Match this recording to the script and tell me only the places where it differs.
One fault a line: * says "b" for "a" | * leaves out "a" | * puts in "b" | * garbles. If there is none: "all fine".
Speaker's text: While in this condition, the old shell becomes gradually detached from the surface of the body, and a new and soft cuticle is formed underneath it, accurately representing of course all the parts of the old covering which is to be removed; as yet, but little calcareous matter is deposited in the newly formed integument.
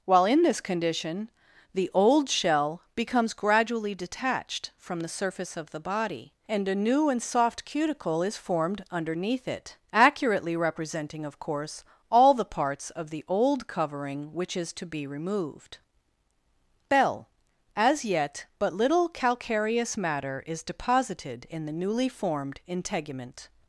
* puts in "bell"